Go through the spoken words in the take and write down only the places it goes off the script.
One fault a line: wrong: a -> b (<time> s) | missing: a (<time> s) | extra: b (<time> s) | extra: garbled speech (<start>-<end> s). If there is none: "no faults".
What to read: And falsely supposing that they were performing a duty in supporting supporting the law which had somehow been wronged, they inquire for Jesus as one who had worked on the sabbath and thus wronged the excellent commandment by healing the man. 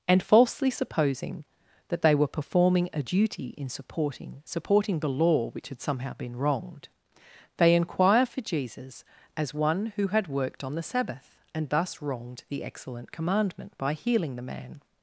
no faults